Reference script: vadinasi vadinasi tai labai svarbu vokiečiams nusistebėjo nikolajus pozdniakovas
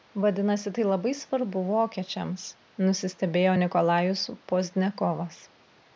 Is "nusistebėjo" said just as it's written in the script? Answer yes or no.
yes